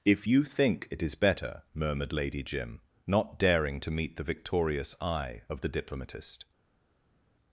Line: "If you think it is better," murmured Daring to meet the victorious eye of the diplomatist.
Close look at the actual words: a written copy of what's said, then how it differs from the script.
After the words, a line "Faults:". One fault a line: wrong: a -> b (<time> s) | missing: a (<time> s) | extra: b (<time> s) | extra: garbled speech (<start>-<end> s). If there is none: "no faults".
"If you think it is better," murmured Lady Jim, not daring to meet the victorious eye of the diplomatist.
Faults:
extra: Lady Jim not (2.1 s)